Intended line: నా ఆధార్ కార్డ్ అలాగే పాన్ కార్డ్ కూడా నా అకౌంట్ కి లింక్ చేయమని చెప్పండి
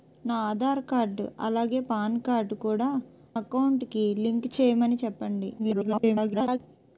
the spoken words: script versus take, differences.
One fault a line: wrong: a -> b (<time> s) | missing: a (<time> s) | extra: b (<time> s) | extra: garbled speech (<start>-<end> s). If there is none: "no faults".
missing: నా (2.9 s)
extra: garbled speech (5.6-6.6 s)